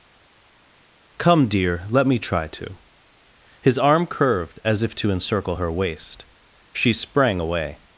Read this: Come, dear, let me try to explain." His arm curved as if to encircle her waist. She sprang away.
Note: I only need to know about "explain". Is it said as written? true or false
false